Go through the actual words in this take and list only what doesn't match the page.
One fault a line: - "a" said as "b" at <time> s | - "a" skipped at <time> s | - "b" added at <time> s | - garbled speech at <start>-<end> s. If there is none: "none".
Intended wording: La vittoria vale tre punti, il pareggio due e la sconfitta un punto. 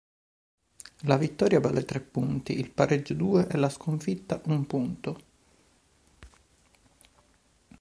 none